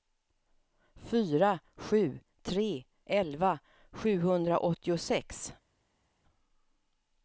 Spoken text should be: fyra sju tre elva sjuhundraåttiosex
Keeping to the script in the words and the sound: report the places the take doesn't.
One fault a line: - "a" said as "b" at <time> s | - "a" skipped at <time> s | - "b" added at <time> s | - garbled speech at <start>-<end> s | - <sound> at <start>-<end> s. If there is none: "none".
none